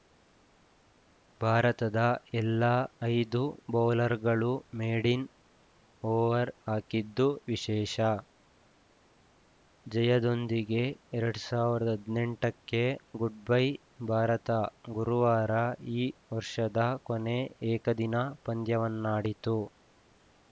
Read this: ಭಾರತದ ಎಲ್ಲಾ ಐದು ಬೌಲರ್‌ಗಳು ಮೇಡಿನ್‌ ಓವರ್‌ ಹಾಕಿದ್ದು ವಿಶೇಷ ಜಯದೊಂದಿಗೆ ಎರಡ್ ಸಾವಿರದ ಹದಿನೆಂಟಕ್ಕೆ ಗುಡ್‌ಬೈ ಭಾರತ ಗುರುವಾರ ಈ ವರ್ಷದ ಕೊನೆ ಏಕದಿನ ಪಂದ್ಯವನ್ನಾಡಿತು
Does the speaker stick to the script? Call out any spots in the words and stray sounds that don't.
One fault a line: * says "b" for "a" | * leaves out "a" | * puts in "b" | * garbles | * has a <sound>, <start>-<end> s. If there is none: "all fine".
all fine